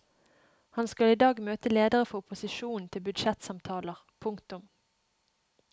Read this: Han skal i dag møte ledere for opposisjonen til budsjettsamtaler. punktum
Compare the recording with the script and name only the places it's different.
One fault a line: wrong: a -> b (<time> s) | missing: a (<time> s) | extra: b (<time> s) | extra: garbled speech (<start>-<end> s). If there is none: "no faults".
no faults